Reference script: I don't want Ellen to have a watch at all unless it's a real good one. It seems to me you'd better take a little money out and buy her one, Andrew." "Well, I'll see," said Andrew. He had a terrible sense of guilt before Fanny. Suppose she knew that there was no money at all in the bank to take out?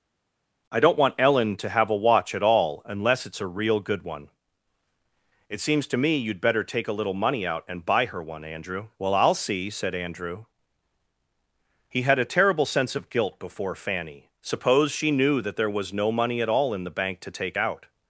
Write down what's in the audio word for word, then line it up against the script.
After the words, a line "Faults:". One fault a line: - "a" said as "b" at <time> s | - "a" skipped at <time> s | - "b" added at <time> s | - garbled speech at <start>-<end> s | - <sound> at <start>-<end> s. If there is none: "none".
I don't want Ellen to have a watch at all unless it's a real good one. It seems to me you'd better take a little money out and buy her one, Andrew." "Well, I'll see," said Andrew. He had a terrible sense of guilt before Fanny. Suppose she knew that there was no money at all in the bank to take out?
Faults:
none